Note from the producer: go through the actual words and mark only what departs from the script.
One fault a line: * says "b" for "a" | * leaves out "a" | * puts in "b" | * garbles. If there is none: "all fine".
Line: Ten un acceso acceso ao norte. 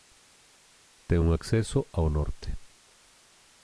* leaves out "acceso"